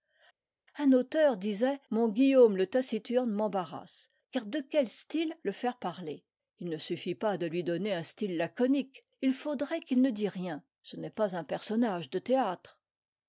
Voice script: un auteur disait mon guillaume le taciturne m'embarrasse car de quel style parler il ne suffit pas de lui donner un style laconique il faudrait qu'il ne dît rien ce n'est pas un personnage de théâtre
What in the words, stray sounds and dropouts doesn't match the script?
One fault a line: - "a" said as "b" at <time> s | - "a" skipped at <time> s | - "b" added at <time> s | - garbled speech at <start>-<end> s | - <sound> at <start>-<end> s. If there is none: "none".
- "le faire" added at 5.4 s